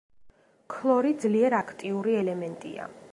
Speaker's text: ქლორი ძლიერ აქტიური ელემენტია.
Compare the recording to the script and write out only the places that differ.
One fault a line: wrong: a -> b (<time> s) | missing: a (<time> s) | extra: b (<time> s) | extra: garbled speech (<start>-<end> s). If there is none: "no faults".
no faults